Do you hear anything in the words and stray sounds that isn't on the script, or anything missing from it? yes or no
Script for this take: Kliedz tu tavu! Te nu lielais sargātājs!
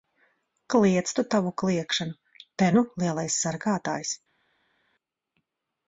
yes